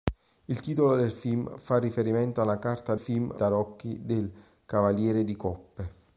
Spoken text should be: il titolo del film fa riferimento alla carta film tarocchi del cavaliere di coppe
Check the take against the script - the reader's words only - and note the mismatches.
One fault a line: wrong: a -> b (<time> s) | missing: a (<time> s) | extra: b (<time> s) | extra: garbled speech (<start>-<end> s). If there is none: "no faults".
no faults